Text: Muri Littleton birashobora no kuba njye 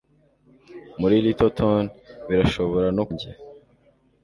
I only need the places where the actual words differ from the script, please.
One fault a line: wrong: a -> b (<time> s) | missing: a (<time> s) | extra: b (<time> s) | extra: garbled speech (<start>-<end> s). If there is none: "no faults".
missing: kuba (3.0 s)